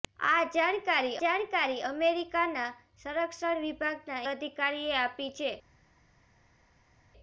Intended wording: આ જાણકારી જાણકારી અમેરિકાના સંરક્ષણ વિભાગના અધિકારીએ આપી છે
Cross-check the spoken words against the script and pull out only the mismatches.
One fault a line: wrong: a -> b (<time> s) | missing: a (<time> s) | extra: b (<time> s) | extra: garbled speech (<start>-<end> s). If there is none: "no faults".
no faults